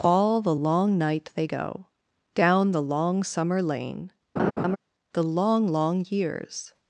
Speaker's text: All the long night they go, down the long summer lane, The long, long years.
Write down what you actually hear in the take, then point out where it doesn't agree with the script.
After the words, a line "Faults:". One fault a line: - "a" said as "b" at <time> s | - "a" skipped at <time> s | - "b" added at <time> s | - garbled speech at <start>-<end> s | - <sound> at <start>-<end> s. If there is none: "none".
All the long night they go, down the long summer lane, The long, long years.
Faults:
- laugh at 4.4-4.8 s